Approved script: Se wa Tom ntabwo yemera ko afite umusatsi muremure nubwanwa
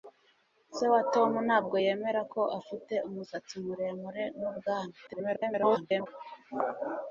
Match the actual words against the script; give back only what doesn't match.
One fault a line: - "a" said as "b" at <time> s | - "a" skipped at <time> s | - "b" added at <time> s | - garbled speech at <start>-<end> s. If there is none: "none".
- garbled speech at 5.1-6.1 s